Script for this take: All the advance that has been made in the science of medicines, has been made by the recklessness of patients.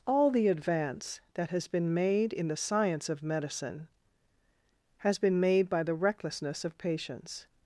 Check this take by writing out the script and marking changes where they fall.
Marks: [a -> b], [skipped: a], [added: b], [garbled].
All the advance that has been made in the science of [medicines, -> medicine] has been made by the recklessness of patients.